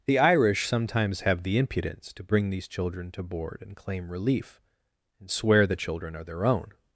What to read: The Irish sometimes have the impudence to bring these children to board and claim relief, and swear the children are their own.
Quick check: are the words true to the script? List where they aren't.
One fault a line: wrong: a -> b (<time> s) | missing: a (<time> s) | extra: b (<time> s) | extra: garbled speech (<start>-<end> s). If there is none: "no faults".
no faults